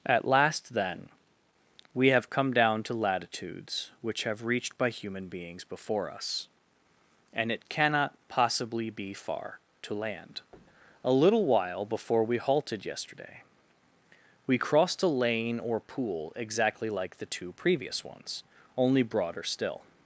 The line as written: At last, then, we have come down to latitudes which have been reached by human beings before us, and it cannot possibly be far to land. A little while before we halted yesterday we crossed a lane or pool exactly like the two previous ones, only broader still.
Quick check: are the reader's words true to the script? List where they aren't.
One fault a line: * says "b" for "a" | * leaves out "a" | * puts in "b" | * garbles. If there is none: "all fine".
* leaves out "been"